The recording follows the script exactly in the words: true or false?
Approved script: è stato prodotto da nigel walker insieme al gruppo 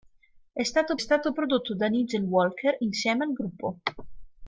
false